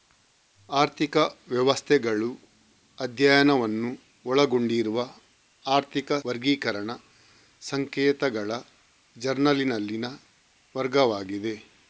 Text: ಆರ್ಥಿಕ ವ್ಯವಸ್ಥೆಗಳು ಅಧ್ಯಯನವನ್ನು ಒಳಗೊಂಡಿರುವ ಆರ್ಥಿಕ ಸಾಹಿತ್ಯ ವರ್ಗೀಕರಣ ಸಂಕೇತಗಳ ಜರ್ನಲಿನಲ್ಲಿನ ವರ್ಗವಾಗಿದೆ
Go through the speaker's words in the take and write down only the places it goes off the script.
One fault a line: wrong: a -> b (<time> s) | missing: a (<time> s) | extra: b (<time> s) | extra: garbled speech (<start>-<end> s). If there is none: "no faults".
missing: ಸಾಹಿತ್ಯ (6.1 s)